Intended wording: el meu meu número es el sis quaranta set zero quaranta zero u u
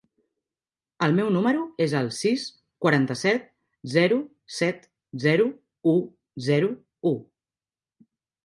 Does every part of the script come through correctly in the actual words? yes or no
no